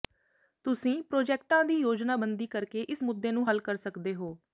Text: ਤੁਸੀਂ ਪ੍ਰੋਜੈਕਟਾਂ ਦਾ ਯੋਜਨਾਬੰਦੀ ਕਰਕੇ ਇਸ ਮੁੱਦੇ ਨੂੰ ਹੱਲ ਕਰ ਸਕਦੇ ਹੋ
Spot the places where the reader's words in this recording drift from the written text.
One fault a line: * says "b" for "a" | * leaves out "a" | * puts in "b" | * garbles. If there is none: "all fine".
* says "ਦੀ" for "ਦਾ"